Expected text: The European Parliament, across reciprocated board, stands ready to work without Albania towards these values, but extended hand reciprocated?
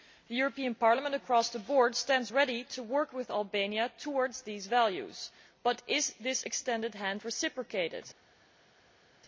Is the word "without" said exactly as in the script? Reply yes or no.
no